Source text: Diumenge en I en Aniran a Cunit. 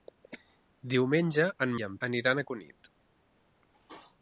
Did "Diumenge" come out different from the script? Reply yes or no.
no